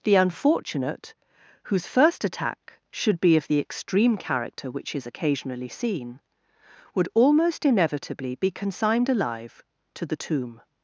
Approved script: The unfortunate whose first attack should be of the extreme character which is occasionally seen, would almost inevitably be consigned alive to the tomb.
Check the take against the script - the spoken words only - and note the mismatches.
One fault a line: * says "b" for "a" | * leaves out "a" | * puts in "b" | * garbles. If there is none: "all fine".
all fine